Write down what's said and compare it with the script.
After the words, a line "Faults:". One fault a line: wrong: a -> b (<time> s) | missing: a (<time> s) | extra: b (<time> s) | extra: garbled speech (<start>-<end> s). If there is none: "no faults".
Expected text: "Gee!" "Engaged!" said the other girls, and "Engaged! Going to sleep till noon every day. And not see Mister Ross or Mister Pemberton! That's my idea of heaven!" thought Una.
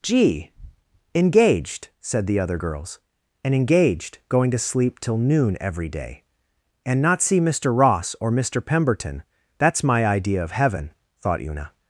"Gee!" "Engaged!" said the other girls, and "Engaged! Going to sleep till noon every day. And not see Mister Ross or Mister Pemberton! That's my idea of heaven!" thought Una.
Faults:
no faults